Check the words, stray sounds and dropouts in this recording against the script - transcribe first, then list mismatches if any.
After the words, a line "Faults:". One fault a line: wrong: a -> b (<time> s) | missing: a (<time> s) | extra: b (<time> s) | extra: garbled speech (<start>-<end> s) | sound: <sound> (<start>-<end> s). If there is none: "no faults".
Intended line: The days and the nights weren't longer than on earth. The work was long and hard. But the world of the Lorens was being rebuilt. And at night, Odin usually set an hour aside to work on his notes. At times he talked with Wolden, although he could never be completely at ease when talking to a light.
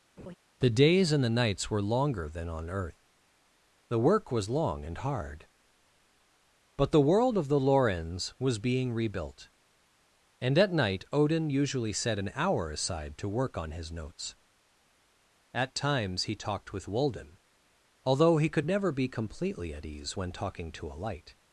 The days and the nights were longer than on earth. The work was long and hard. But the world of the Lorens was being rebuilt. And at night, Odin usually set an hour aside to work on his notes. At times he talked with Wolden, although he could never be completely at ease when talking to a light.
Faults:
sound: laugh (0.2-0.3 s)
wrong: weren't -> were (1.7 s)